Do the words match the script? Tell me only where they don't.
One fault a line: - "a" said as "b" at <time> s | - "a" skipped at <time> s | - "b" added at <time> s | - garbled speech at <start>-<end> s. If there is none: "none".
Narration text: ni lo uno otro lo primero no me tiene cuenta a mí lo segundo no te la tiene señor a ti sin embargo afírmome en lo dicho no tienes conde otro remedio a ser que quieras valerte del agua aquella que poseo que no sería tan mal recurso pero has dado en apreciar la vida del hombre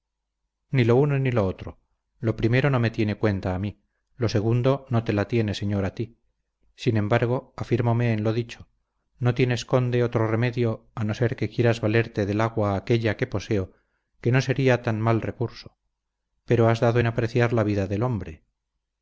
- "ni lo" added at 1.2 s
- "no" added at 11.0 s